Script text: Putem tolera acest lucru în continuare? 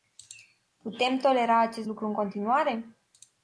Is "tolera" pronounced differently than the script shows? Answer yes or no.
no